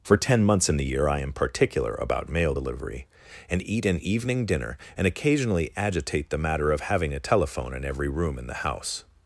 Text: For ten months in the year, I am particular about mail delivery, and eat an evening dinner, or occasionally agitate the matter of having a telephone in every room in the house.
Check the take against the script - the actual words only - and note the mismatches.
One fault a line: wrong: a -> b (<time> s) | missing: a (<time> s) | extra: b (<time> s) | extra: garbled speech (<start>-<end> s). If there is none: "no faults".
wrong: or -> and (4.9 s)